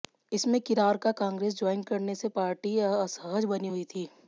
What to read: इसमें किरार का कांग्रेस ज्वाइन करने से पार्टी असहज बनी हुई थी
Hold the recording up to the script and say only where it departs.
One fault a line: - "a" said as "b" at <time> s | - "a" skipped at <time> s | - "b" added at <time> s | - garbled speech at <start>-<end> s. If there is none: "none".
none